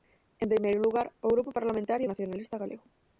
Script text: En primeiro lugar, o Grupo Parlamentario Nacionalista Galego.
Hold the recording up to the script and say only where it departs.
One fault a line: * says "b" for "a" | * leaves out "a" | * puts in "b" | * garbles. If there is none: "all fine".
all fine